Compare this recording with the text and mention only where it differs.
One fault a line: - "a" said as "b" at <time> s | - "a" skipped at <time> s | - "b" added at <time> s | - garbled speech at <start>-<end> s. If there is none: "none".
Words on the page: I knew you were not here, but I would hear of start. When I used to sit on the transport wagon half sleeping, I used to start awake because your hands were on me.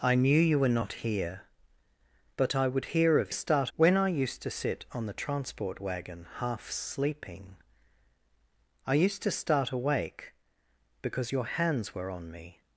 none